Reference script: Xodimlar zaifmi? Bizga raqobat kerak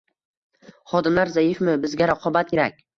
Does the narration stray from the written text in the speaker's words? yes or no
no